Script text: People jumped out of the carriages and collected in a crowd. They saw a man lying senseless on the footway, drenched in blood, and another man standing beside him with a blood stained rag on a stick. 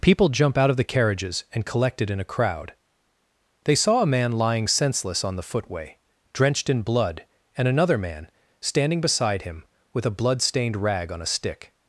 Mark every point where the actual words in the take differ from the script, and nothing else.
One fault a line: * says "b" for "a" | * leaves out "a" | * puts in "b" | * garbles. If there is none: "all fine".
* says "jump" for "jumped"